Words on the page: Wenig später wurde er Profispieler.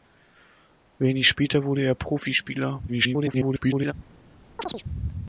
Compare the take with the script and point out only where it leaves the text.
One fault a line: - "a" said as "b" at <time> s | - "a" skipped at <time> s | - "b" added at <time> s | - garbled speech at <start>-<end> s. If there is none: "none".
- garbled speech at 2.9-3.9 s